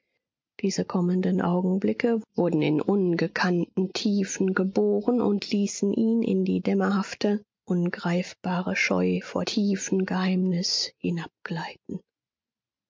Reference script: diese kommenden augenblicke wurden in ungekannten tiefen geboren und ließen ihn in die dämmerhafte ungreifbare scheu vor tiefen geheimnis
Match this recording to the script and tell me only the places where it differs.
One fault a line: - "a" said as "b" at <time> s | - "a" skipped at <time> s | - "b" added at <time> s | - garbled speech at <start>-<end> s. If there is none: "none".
none